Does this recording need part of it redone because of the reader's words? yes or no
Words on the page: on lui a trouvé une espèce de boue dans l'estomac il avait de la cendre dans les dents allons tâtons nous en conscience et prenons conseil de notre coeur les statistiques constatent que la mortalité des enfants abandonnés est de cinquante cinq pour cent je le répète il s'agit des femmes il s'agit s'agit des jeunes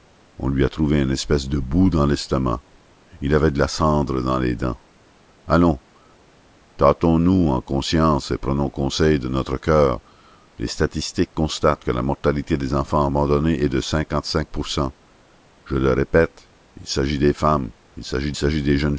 no